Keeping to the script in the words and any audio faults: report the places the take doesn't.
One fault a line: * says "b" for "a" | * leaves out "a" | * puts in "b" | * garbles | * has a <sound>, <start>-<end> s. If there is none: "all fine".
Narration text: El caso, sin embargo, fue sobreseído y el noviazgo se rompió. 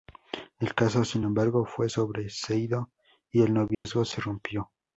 * has a dropout, 3.7-3.9 s